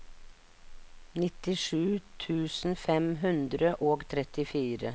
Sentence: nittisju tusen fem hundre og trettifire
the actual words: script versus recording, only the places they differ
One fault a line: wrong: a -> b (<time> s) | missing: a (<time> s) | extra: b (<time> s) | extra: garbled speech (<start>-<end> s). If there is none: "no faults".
no faults